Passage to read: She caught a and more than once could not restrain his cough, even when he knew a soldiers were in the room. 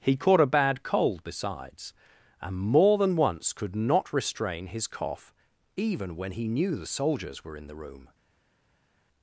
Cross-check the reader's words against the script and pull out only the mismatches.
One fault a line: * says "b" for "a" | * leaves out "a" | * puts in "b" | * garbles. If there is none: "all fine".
* says "He" for "She"
* puts in "bad cold besides"
* says "the" for "a"